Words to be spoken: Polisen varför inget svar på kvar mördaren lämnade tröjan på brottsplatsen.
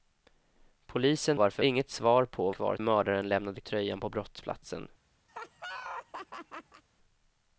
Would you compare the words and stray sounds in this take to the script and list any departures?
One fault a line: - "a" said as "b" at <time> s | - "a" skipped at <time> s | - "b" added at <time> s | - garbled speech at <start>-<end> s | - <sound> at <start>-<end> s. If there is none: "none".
- laugh at 5.3-6.8 s